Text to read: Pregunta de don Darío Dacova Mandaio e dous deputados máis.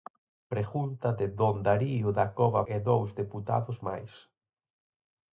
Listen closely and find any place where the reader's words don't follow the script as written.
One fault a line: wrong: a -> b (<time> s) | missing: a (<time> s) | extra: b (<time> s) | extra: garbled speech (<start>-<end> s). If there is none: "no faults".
missing: Mandaio (2.6 s)